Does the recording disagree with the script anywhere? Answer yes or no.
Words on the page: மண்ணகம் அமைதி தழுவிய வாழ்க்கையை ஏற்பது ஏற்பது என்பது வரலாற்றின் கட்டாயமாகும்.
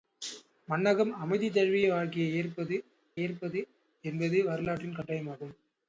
no